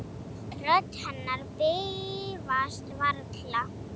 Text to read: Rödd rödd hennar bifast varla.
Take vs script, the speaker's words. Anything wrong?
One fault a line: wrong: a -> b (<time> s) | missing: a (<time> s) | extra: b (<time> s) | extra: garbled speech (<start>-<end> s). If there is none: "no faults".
missing: rödd (0.9 s)